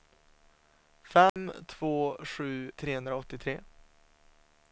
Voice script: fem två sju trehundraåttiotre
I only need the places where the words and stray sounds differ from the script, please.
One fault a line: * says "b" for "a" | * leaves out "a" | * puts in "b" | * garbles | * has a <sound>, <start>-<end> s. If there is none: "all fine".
* has a dropout, 1.3-1.4 s